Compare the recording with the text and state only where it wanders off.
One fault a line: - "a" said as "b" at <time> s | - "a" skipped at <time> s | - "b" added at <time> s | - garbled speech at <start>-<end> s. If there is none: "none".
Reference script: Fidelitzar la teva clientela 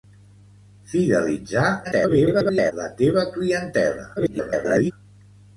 - garbled speech at 1.8-2.7 s
- garbled speech at 4.2-4.9 s